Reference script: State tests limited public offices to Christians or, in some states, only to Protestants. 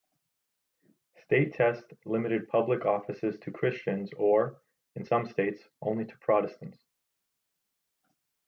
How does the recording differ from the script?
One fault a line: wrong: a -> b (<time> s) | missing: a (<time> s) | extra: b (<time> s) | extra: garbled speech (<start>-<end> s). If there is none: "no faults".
no faults